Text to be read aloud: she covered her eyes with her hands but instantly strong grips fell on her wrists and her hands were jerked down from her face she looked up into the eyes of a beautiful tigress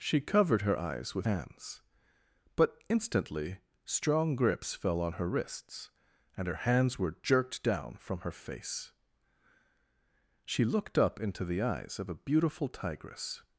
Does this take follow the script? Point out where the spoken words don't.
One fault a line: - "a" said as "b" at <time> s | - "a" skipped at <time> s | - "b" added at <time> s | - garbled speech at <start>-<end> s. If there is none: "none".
- "her" skipped at 1.3 s